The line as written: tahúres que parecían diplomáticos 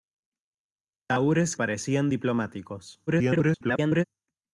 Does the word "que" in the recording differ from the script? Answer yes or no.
yes